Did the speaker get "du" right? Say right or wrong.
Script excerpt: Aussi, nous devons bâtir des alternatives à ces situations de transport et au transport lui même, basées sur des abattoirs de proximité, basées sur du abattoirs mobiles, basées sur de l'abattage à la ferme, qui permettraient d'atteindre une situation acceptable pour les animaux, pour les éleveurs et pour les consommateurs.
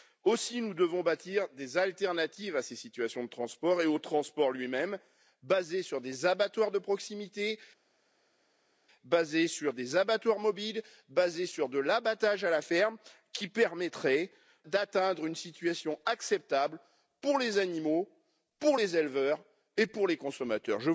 wrong